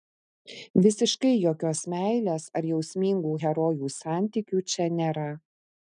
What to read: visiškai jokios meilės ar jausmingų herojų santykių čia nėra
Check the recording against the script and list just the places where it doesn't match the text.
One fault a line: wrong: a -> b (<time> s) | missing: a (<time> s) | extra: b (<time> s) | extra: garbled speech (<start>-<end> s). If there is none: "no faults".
no faults